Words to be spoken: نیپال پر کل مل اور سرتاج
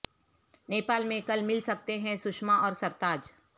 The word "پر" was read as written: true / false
false